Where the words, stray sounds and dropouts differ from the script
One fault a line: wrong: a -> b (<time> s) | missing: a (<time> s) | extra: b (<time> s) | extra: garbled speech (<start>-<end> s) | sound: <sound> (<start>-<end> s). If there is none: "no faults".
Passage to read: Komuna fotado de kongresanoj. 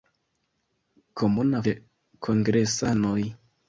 missing: fotado (1.6 s)